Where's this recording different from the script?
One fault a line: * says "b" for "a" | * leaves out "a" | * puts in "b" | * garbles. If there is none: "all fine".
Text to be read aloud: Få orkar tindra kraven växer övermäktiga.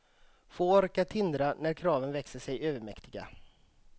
* puts in "när"
* puts in "sig"